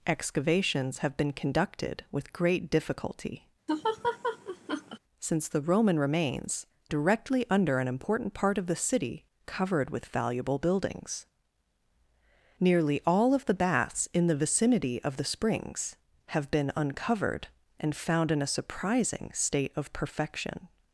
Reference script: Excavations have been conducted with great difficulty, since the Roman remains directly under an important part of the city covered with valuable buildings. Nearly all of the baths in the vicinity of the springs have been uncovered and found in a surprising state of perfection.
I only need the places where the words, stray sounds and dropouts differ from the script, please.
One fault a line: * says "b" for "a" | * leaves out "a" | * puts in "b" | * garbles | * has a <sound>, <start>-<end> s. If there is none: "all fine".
* has a laugh, 3.7-5.0 s